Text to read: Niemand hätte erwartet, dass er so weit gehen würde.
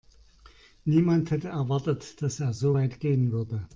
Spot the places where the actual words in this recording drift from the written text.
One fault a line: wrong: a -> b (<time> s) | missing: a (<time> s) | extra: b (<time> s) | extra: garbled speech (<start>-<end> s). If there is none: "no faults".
no faults